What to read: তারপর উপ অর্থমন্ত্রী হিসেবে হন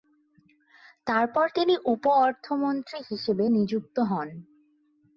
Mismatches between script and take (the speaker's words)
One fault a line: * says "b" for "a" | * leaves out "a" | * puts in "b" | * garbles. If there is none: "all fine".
* puts in "তিনি"
* puts in "নিযুক্ত"